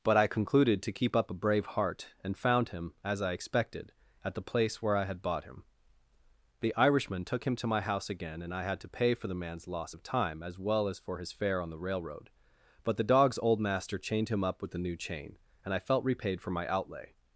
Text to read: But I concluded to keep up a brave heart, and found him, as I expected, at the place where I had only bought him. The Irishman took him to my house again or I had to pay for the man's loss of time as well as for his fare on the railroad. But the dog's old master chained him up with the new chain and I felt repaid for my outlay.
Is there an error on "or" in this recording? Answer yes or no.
yes